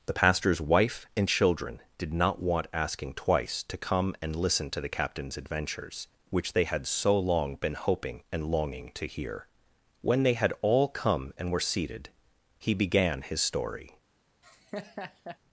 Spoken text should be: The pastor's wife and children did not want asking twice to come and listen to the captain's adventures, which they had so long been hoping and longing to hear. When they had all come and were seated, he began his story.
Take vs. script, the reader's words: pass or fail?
pass